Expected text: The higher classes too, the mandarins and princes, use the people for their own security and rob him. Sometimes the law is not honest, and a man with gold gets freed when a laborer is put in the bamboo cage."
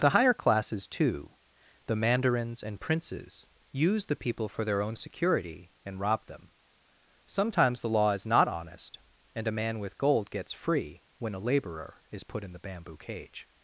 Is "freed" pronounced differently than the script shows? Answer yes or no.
yes